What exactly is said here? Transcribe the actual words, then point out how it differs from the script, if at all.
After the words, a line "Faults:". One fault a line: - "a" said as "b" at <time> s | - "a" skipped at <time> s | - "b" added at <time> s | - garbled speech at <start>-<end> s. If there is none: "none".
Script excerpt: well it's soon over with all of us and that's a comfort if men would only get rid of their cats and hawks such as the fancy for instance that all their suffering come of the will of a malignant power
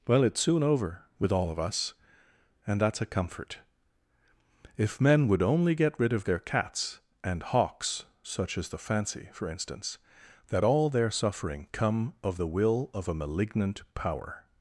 well it's soon over with all of us and that's a comfort if men would only get rid of their cats and hawks such as the fancy for instance that all their suffering come of the will of a malignant power
Faults:
none